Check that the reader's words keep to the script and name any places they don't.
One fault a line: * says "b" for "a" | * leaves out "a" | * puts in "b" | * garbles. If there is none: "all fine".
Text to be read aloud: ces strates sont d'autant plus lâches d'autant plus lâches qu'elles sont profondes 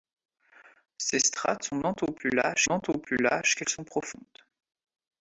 all fine